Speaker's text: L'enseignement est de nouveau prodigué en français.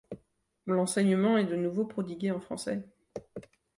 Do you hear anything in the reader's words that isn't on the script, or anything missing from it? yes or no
no